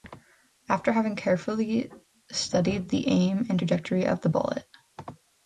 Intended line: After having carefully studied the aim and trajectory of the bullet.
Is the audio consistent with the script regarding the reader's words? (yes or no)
yes